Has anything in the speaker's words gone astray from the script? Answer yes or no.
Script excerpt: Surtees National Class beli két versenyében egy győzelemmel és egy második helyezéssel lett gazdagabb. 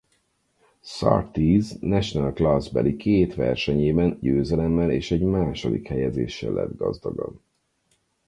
yes